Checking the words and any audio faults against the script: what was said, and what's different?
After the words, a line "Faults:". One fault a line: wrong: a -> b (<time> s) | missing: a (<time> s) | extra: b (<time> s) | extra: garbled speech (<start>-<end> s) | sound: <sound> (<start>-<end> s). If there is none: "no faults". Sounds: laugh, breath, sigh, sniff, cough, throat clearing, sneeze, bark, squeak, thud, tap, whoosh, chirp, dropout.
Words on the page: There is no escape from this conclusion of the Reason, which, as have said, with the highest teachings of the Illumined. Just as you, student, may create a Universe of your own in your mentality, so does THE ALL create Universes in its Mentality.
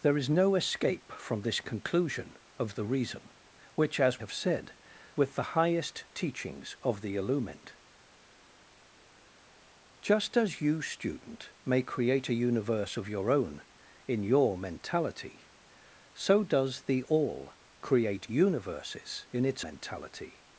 There is no escape from this conclusion of the Reason, which, as have said, with the highest teachings of the Illumined. Just as you, student, may create a Universe of your own in your mentality, so does THE ALL create Universes in its Mentality.
Faults:
no faults